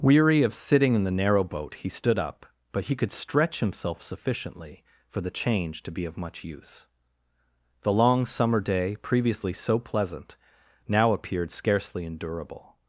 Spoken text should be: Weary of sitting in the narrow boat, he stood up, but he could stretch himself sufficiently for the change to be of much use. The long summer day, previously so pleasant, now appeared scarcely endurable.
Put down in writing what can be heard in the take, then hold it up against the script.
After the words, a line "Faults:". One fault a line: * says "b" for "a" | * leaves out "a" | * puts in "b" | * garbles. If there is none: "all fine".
Weary of sitting in the narrow boat, he stood up, but he could stretch himself sufficiently for the change to be of much use. The long summer day, previously so pleasant, now appeared scarcely endurable.
Faults:
all fine